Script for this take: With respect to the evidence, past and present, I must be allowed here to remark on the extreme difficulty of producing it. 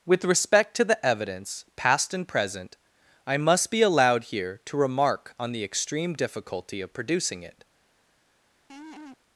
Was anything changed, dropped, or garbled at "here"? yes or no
no